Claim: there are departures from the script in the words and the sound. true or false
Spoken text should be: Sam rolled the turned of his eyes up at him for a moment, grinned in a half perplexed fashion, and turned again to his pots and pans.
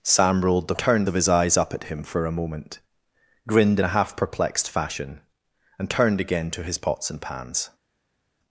false